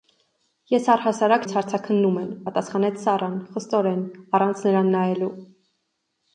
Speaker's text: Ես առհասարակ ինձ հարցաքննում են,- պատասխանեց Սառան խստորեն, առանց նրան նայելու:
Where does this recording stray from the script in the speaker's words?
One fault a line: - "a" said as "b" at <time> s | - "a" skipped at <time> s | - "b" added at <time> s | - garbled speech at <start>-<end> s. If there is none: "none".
none